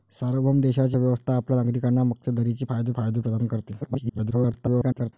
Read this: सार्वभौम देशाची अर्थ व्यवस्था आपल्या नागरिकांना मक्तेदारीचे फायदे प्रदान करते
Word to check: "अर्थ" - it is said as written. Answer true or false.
false